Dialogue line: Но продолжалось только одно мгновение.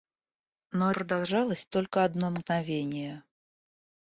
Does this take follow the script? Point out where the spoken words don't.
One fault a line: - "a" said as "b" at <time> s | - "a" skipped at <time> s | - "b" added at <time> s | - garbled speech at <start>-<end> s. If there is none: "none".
none